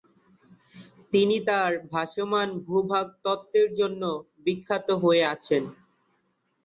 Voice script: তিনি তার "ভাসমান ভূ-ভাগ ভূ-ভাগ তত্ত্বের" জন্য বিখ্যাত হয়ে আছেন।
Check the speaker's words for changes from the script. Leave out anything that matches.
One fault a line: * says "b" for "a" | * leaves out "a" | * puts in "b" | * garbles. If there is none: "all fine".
* leaves out "ভূ-ভাগ"